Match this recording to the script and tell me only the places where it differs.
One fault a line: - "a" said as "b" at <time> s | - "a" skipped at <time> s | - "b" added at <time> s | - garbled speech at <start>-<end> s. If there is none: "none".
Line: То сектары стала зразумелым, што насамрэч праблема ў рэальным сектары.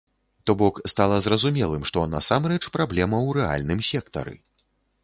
- "сектары" said as "бок" at 0.6 s